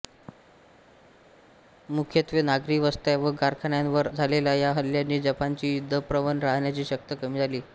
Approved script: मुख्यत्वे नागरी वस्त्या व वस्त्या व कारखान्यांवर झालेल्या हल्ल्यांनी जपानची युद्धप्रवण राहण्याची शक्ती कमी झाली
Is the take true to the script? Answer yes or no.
no